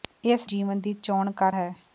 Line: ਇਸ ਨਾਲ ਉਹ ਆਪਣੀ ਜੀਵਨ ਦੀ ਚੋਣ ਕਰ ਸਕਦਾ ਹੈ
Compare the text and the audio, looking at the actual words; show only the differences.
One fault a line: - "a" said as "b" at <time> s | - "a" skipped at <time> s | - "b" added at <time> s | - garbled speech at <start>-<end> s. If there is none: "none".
- "ਨਾਲ ਉਹ ਆਪਣੀ" skipped at 0.5 s
- "ਸਕਦਾ" skipped at 1.5 s